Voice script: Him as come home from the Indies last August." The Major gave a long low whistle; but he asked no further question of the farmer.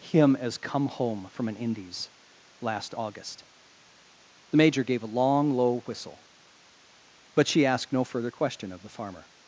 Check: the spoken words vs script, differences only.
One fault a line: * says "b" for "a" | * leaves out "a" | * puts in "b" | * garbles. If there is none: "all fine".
* says "an" for "the"
* says "she" for "he"